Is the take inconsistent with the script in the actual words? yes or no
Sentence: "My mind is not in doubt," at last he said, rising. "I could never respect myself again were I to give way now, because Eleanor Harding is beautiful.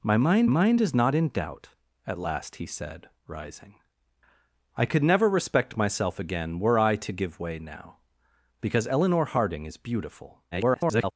yes